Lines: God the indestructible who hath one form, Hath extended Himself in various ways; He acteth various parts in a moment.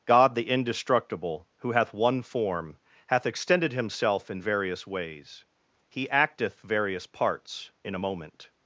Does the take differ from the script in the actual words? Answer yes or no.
no